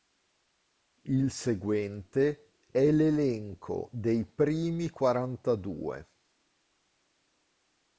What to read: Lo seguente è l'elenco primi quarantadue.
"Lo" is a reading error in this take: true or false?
true